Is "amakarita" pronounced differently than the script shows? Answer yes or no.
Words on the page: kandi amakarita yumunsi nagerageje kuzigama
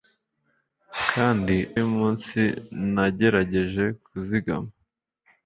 yes